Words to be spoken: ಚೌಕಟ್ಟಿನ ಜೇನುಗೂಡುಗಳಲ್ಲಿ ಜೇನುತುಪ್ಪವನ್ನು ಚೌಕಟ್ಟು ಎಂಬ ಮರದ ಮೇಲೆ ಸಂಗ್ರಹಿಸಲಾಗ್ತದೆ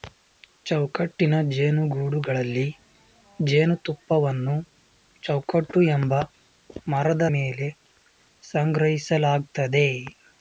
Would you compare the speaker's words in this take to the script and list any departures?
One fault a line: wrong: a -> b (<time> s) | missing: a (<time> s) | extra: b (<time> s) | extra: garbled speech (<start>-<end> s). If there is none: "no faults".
no faults